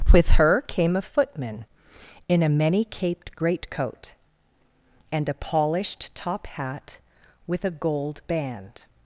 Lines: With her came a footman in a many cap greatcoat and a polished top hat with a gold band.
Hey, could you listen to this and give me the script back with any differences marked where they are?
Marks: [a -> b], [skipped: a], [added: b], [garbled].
With her came a footman in a many [cap -> caped] greatcoat and a polished top hat with a gold band.